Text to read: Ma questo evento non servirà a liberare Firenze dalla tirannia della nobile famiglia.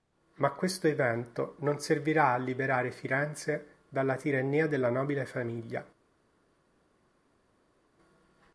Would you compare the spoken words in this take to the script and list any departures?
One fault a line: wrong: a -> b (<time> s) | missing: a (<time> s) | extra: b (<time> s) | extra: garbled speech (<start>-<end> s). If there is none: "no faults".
no faults